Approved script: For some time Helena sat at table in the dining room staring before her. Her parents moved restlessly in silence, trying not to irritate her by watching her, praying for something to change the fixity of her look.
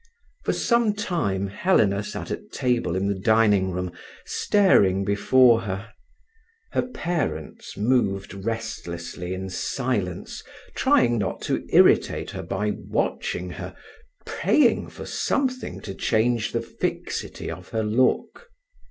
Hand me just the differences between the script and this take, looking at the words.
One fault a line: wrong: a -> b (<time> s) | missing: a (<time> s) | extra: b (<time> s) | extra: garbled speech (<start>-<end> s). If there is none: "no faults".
no faults